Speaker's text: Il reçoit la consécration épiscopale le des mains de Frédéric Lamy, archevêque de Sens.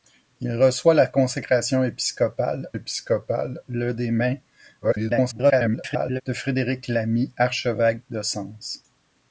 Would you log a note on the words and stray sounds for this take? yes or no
yes